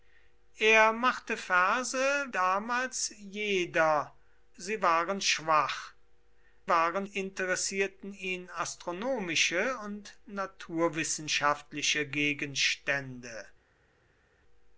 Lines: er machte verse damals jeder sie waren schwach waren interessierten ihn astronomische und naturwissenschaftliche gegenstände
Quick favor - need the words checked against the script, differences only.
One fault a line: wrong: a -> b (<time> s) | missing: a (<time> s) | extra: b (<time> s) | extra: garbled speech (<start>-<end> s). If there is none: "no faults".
no faults